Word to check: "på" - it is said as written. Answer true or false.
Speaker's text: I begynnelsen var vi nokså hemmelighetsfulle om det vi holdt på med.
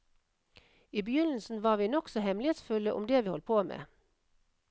true